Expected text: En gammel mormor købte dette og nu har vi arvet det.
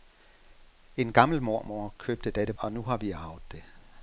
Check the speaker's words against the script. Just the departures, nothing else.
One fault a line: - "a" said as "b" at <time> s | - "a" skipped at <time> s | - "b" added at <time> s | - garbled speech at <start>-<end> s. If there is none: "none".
none